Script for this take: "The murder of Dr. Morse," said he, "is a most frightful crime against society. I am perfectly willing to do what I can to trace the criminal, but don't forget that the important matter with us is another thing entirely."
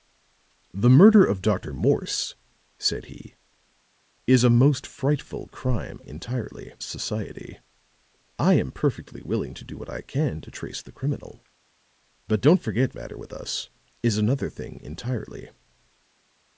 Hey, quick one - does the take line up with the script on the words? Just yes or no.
no